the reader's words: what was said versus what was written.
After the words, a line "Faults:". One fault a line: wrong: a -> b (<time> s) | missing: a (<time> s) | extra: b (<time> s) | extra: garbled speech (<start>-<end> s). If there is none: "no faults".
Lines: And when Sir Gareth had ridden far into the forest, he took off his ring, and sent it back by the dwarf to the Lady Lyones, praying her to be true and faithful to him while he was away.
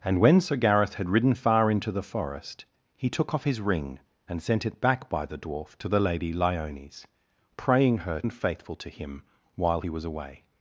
And when Sir Gareth had ridden far into the forest, he took off his ring, and sent it back by the dwarf to the Lady Lyones, praying her and faithful to him while he was away.
Faults:
missing: to be true (8.2 s)